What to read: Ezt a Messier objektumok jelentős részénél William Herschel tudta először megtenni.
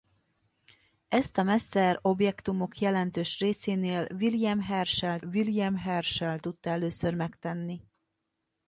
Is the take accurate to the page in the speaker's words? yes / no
no